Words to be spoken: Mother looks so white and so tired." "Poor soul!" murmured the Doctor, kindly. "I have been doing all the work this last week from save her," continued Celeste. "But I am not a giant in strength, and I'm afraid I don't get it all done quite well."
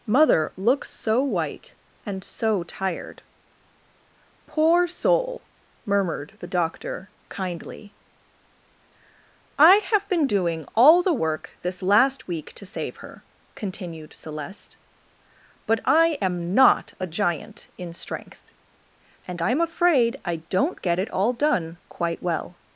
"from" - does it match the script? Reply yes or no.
no